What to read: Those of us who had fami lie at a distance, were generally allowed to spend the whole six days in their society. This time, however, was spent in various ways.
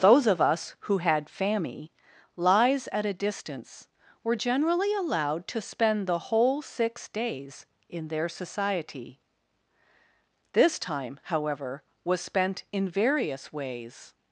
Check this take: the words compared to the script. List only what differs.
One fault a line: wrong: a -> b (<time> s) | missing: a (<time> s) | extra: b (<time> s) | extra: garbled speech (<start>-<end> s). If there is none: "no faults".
wrong: lie -> lies (2.4 s)